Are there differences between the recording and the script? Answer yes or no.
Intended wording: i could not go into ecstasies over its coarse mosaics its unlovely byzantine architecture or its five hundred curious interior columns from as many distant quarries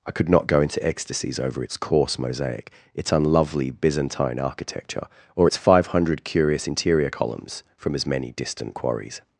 yes